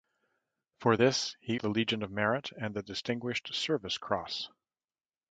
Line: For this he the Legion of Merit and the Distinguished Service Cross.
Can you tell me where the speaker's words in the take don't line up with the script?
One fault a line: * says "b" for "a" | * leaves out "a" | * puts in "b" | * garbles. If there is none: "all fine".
all fine